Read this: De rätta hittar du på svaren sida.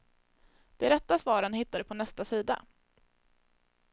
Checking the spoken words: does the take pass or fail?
fail